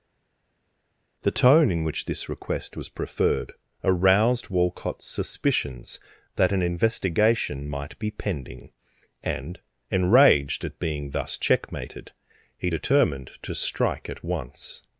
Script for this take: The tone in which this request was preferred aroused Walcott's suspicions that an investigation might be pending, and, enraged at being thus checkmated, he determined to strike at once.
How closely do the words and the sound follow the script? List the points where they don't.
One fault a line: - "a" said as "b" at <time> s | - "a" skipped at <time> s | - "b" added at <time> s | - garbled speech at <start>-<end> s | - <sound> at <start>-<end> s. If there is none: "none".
none